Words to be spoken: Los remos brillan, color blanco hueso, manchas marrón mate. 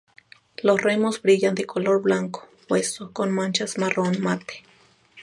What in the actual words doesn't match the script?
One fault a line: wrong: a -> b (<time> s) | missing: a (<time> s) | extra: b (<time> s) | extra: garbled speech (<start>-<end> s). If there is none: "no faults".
extra: de (1.5 s)
extra: con (3.1 s)